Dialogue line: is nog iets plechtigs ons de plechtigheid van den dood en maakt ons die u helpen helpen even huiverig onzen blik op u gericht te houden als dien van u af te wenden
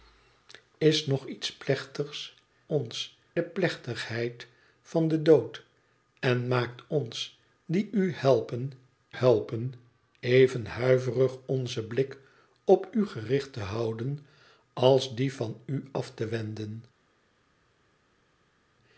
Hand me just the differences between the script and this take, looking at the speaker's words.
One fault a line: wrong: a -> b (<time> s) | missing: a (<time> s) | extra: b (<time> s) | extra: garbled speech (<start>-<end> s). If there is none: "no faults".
no faults